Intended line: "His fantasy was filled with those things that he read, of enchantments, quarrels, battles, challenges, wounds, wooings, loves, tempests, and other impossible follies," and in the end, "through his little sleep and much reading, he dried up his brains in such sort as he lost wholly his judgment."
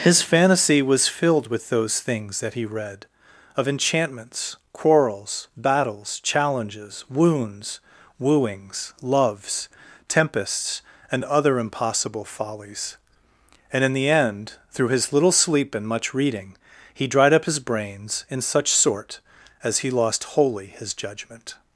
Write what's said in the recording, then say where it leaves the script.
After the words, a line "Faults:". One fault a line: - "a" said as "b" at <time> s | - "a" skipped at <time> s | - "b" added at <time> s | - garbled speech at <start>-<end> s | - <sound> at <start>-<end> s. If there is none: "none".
"His fantasy was filled with those things that he read, of enchantments, quarrels, battles, challenges, wounds, wooings, loves, tempests, and other impossible follies," and in the end, "through his little sleep and much reading, he dried up his brains in such sort as he lost wholly his judgment."
Faults:
none